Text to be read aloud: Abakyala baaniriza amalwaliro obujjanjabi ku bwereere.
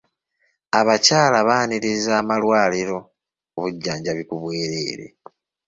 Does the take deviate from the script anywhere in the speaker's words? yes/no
no